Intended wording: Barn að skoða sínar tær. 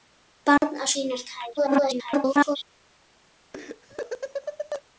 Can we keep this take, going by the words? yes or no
no